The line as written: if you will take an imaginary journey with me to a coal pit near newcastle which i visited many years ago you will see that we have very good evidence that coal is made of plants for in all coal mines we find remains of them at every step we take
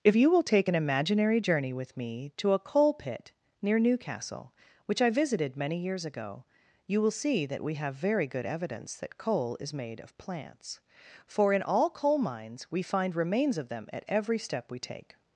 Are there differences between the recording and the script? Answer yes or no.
no